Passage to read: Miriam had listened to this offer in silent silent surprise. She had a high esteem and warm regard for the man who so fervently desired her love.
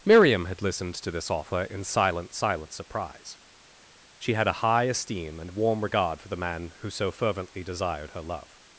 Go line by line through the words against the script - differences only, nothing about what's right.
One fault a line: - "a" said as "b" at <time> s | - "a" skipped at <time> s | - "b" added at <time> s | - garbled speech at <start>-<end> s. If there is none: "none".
none